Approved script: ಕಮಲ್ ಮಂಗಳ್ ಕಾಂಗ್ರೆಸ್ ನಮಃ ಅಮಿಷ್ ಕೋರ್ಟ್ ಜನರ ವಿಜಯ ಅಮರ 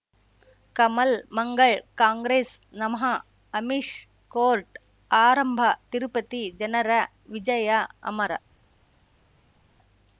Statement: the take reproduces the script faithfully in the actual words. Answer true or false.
false